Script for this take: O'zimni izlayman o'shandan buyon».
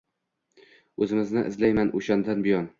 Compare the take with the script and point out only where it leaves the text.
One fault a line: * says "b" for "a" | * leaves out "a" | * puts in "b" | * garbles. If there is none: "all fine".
all fine